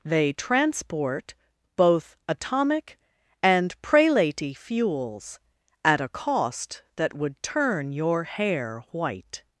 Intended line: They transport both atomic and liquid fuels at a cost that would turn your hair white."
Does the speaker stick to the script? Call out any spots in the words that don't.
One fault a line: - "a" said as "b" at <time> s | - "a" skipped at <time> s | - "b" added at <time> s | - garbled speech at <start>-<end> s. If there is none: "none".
- "liquid" said as "prelaty" at 3.8 s